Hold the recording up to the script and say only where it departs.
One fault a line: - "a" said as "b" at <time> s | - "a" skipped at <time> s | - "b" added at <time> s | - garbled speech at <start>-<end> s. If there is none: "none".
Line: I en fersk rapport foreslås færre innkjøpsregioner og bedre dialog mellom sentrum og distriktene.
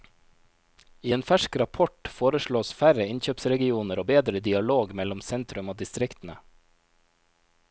none